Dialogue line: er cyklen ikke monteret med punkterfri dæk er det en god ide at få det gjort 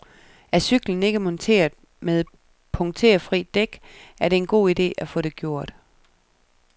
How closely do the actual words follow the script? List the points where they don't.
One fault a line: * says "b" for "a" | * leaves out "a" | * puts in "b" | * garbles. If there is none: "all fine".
all fine